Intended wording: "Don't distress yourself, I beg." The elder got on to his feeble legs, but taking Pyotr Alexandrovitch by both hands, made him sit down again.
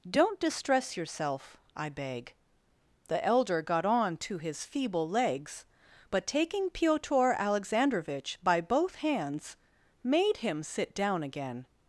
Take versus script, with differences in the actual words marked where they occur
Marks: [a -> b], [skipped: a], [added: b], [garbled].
"Don't distress yourself, I beg." The elder got on to his feeble legs, but taking Pyotr Alexandrovitch by both hands, made him sit down again.